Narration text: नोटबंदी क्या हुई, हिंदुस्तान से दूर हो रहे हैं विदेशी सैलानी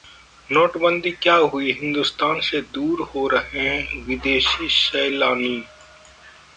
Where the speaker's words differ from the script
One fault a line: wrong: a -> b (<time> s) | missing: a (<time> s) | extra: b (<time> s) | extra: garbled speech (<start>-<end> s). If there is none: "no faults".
no faults